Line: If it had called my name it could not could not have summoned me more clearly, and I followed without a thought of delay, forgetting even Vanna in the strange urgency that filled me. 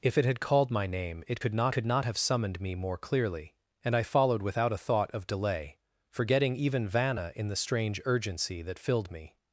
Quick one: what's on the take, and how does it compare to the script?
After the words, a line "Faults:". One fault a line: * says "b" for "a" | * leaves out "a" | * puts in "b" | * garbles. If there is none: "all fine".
If it had called my name it could not could not have summoned me more clearly, and I followed without a thought of delay, forgetting even Vanna in the strange urgency that filled me.
Faults:
all fine